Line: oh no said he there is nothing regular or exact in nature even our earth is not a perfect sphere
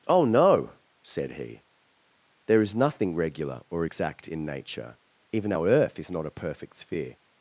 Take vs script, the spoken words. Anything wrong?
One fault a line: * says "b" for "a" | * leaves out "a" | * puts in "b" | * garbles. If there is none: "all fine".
all fine